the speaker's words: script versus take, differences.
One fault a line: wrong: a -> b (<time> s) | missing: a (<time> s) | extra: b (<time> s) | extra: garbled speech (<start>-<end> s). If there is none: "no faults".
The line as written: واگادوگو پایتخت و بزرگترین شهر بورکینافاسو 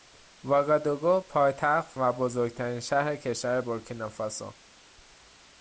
extra: کشور (3.2 s)